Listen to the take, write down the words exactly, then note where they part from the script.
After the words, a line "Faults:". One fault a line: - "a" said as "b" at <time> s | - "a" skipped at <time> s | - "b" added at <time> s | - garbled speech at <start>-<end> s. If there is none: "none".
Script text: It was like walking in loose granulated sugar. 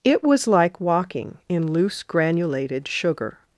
It was like walking in loose granulated sugar.
Faults:
none